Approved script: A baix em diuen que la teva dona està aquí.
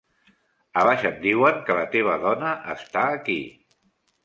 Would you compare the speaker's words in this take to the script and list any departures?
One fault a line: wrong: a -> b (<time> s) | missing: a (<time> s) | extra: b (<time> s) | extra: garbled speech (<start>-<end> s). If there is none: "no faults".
no faults